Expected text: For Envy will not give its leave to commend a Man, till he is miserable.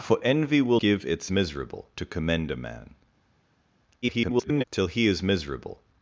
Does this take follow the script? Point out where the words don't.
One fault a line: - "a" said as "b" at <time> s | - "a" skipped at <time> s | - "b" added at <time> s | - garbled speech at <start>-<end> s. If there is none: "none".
- "not" skipped at 0.8 s
- "leave" said as "miserable" at 1.3 s
- garbled speech at 4.0-4.6 s